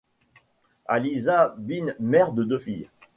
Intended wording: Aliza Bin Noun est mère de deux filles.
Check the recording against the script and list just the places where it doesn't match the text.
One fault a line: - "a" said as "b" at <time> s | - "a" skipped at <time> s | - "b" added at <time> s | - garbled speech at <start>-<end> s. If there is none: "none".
- "Noun est" skipped at 1.9 s